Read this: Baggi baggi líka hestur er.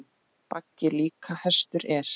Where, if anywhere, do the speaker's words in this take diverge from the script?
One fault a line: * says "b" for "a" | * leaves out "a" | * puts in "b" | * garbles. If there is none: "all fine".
* leaves out "baggi"